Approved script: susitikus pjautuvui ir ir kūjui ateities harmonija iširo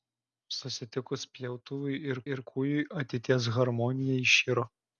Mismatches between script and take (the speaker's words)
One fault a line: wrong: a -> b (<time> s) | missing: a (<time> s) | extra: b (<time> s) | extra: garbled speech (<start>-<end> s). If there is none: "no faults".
no faults